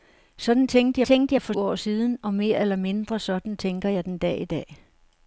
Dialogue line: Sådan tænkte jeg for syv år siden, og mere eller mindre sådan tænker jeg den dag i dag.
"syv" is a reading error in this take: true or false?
true